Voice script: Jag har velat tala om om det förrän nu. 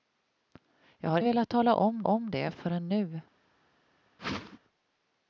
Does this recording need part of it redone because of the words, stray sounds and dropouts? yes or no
yes